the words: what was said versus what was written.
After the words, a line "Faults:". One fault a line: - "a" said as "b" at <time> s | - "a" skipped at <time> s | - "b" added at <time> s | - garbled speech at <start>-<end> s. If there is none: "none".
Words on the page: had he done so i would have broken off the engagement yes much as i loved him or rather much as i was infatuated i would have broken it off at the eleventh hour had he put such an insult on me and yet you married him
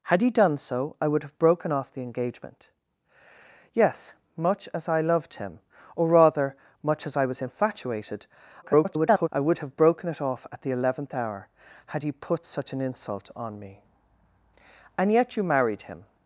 had he done so i would have broken off the engagement yes much as i loved him or rather much as i was infatuated [garbled] i would have broken it off at the eleventh hour had he put such an insult on me and yet you married him
Faults:
- garbled speech at 8.6-9.3 s